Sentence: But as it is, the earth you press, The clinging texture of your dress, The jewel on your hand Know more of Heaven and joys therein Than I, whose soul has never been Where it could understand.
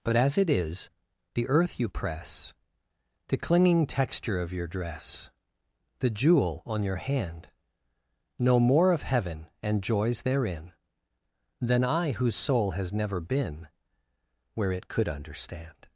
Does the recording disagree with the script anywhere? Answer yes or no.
no